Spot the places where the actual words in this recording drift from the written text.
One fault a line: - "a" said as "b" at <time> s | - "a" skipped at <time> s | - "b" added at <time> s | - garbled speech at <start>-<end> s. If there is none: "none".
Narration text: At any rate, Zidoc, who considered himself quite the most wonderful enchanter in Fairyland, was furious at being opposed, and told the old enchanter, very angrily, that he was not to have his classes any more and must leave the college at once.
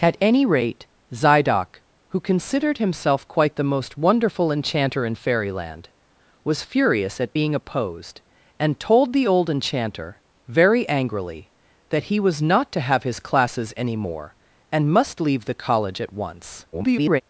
- garbled speech at 16.7-17.2 s